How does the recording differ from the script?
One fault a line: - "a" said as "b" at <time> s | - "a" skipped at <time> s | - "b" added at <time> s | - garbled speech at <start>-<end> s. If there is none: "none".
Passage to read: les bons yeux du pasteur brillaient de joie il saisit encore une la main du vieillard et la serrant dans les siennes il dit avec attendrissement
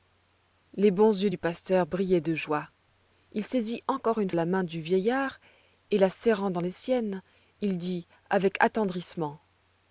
none